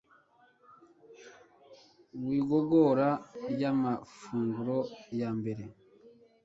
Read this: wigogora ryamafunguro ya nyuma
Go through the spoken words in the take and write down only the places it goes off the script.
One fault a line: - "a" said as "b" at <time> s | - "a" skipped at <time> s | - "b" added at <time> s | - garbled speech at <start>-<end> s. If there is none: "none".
- "nyuma" said as "mbere" at 5.4 s